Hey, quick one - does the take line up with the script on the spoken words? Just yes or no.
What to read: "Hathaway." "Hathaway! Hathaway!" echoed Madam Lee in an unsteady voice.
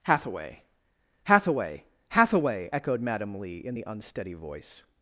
no